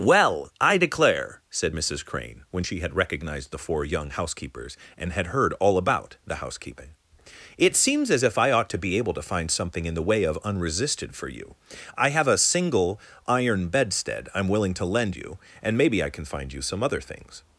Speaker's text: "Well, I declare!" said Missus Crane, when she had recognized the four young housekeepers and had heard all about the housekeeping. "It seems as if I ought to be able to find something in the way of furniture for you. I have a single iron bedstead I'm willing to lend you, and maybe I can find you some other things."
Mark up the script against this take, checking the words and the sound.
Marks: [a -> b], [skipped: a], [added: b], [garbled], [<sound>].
"Well, I declare!" said Missus Crane, when she had recognized the four young housekeepers and had heard all about the housekeeping. "It seems as if I ought to be able to find something in the way of [furniture -> unresisted] for you. I have a single iron bedstead I'm willing to lend you, and maybe I can find you some other things."